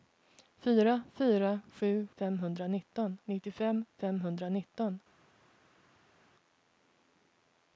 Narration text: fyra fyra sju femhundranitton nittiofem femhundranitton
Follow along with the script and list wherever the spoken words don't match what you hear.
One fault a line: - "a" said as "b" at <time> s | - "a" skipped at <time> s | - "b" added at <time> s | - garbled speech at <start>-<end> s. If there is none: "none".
none